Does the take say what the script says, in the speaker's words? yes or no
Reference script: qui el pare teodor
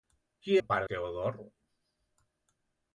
yes